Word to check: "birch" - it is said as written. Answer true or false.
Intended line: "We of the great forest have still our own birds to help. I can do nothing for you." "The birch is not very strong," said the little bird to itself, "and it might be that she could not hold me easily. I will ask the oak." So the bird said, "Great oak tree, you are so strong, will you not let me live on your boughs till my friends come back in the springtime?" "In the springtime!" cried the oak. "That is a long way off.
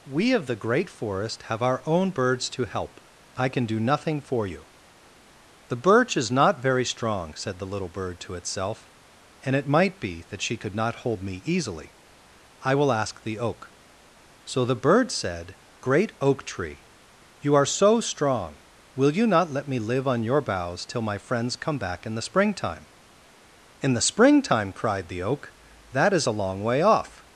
true